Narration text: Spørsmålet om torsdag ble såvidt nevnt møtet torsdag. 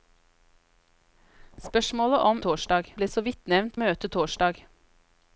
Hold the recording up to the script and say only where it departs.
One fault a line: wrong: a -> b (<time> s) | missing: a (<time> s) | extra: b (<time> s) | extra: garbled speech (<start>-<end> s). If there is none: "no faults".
no faults